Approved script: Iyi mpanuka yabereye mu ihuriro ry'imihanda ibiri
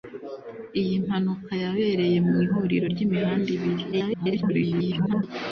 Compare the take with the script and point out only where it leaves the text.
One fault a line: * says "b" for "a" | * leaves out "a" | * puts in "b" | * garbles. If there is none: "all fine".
* garbles